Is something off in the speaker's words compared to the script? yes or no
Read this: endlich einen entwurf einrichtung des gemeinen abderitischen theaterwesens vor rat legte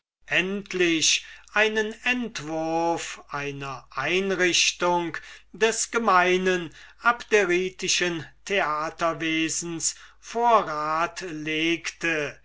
yes